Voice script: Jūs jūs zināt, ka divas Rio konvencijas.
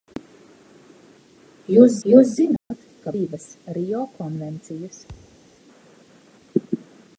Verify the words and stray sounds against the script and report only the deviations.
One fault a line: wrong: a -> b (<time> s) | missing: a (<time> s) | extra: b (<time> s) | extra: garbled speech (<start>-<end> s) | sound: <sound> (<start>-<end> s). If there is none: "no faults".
sound: dropout (2.6-2.7 s)
sound: thud (5.1-5.4 s)